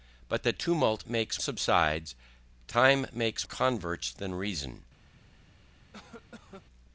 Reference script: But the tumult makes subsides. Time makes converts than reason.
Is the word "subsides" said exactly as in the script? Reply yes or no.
yes